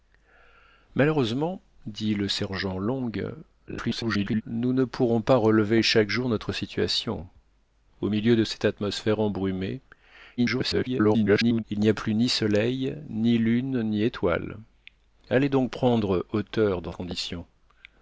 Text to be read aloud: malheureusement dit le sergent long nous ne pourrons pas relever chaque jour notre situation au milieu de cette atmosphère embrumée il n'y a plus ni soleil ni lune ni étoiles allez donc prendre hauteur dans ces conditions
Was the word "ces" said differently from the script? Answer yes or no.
yes